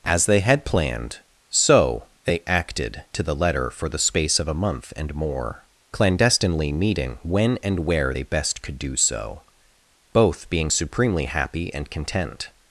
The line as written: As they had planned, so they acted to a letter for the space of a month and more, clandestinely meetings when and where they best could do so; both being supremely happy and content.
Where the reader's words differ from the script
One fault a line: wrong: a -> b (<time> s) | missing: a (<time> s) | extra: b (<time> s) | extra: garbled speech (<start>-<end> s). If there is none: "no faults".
wrong: a -> the (3.2 s)
wrong: meetings -> meeting (6.7 s)